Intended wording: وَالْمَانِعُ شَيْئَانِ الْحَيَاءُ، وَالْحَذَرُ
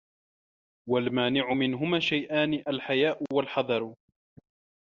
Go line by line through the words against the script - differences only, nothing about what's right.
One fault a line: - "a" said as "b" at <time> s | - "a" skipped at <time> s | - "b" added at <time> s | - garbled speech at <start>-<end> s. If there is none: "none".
- "مِنْهُمَا" added at 1.5 s